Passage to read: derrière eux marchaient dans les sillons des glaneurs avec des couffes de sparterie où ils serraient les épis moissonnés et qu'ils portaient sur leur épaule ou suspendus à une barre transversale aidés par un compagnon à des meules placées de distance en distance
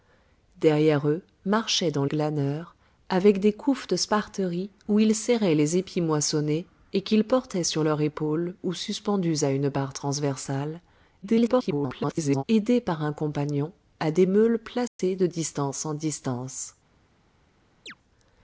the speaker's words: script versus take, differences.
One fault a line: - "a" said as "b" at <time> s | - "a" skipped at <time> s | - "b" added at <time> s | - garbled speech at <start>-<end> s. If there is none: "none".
- "les sillons des" skipped at 2.0 s
- garbled speech at 11.2-12.4 s